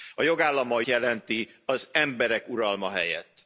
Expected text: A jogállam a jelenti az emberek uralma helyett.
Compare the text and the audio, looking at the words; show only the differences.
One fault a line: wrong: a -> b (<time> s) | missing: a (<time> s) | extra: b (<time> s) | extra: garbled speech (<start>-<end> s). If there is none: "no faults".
no faults